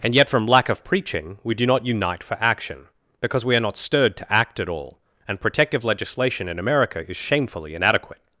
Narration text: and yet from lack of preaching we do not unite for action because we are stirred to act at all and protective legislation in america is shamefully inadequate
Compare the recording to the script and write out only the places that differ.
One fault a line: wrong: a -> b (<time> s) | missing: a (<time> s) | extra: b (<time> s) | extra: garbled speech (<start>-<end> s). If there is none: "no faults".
extra: not (3.6 s)